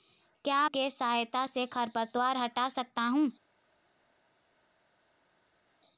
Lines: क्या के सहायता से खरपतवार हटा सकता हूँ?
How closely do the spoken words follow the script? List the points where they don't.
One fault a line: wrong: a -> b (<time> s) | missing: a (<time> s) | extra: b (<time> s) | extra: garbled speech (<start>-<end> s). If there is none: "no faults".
no faults